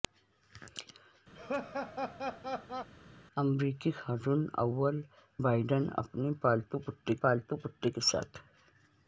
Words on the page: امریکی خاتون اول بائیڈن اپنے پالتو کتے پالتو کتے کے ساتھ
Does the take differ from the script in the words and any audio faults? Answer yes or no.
yes